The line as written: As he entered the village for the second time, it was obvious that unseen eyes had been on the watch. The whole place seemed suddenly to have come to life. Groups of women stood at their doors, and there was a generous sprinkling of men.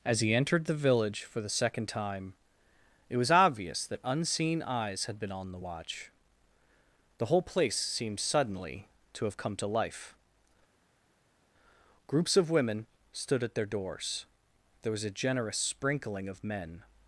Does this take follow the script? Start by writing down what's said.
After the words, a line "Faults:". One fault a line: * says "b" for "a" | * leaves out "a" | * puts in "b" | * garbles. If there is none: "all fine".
As he entered the village for the second time, it was obvious that unseen eyes had been on the watch. The whole place seemed suddenly to have come to life. Groups of women stood at their doors, there was a generous sprinkling of men.
Faults:
* leaves out "and"